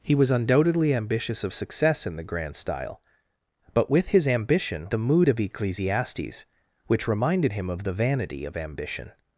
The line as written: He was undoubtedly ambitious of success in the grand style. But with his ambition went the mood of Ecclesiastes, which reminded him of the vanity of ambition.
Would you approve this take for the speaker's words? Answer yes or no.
no